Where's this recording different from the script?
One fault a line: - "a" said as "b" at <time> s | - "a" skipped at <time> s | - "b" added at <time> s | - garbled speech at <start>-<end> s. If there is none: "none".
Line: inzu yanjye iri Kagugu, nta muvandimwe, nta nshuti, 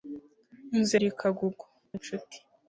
- "yanjye" skipped at 0.9 s
- "nta muvandimwe nta" skipped at 1.7 s